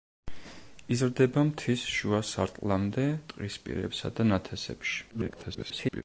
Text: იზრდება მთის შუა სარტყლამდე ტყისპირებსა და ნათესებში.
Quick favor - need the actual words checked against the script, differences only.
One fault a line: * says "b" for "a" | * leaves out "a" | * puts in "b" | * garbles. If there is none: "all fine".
* garbles